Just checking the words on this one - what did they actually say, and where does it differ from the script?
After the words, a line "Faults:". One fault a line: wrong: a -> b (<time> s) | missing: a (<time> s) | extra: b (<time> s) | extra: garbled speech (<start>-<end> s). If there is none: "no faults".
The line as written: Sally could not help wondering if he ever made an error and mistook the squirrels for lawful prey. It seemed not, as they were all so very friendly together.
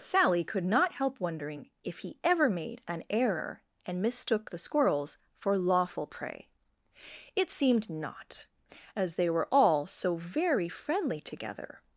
Sally could not help wondering if he ever made an error and mistook the squirrels for lawful prey. It seemed not, as they were all so very friendly together.
Faults:
no faults